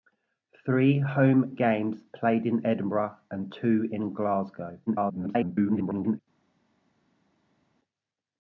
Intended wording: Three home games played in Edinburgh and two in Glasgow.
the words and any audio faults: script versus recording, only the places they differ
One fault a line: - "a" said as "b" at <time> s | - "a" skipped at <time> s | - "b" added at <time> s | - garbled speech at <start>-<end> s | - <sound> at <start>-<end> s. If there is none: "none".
- garbled speech at 4.9-6.2 s